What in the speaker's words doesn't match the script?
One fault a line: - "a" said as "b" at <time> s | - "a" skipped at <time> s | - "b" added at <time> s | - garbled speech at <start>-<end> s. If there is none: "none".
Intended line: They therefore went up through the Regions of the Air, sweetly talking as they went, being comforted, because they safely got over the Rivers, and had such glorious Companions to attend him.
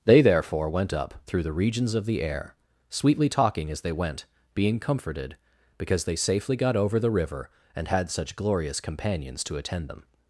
- "Rivers" said as "River" at 7.1 s
- "him" said as "them" at 9.9 s